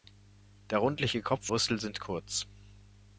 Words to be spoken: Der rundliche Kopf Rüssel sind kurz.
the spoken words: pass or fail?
pass